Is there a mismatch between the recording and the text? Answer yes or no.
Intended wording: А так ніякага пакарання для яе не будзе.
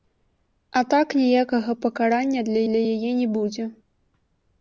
yes